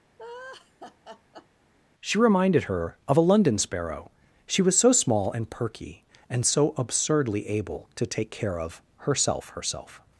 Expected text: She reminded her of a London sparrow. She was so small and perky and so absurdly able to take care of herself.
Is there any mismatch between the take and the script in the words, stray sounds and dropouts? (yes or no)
yes